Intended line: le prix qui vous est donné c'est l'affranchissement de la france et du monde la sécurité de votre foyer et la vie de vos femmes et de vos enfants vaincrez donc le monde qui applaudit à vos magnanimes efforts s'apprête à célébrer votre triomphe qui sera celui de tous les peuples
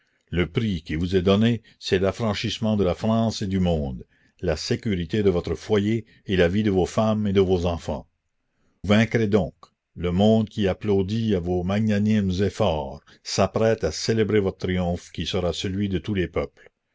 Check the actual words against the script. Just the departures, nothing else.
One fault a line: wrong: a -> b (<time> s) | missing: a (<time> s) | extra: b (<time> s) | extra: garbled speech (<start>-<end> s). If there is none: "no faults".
no faults